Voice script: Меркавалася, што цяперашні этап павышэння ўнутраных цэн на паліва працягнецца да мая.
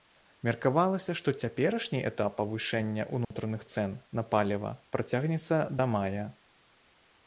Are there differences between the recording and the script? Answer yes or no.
no